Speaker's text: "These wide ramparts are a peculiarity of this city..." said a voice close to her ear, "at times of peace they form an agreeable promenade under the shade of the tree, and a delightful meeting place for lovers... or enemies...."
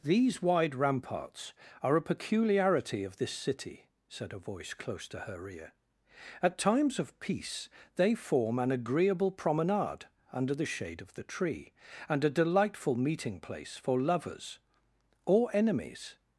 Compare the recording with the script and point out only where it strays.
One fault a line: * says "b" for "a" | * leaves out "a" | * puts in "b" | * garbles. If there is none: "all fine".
all fine